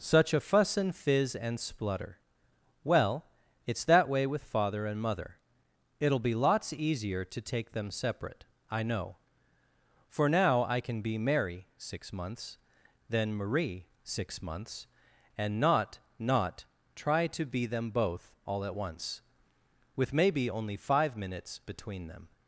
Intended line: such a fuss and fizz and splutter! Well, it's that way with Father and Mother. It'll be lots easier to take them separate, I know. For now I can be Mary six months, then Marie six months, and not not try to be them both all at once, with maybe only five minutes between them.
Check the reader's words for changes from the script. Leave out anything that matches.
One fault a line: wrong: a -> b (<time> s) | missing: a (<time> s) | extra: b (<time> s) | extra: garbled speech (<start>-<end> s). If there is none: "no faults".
no faults